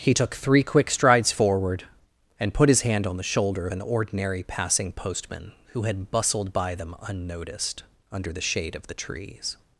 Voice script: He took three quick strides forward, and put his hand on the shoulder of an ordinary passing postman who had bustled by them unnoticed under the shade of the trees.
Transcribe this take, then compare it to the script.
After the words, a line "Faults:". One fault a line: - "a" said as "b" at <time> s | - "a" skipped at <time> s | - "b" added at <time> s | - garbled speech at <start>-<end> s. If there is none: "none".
He took three quick strides forward, and put his hand on the shoulder an ordinary passing postman who had bustled by them unnoticed under the shade of the trees.
Faults:
- "of" skipped at 3.7 s